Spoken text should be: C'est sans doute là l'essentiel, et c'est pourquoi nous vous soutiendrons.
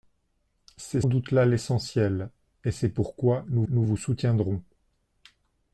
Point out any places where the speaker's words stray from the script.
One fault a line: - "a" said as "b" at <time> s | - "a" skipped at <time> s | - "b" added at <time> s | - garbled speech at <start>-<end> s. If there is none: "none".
- "sans" skipped at 1.0 s
- "nous" added at 3.7 s